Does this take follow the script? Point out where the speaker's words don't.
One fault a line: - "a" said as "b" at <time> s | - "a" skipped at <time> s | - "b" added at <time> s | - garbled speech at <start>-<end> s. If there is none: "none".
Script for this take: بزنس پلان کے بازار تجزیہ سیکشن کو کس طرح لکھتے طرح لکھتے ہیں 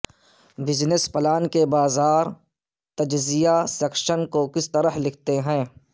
- "طرح لکھتے" skipped at 5.4 s